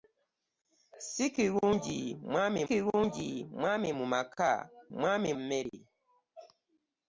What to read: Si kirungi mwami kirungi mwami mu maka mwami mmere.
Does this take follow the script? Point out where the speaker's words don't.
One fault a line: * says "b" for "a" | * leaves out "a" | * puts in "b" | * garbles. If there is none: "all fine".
all fine